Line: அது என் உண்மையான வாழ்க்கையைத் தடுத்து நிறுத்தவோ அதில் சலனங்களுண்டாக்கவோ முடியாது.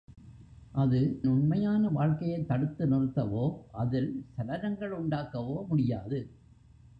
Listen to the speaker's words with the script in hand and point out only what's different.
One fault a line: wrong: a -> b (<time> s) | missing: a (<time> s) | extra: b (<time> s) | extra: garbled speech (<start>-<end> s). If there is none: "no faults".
missing: என் (1.2 s)